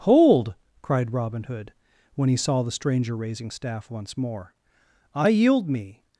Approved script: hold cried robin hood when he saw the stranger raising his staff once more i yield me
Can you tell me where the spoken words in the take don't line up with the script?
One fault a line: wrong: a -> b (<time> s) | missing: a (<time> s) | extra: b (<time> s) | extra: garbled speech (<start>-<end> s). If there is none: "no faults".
missing: his (3.5 s)